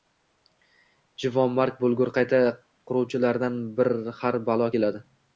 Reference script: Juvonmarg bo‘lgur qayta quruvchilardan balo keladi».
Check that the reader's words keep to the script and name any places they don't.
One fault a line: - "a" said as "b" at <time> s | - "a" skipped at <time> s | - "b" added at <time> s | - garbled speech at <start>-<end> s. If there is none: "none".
- "har" added at 4.2 s